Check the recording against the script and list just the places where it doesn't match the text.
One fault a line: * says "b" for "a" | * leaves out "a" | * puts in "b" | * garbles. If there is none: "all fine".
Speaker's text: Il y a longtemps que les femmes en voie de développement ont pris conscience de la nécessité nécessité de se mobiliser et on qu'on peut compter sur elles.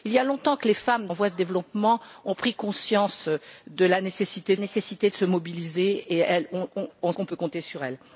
all fine